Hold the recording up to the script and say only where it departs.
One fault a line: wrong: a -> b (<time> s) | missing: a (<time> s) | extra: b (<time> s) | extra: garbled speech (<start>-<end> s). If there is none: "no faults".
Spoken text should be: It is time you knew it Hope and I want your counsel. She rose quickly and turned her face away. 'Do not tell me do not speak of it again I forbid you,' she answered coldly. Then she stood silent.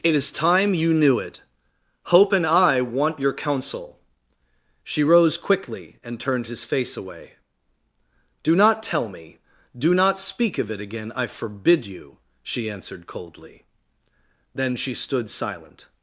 wrong: her -> his (6.5 s)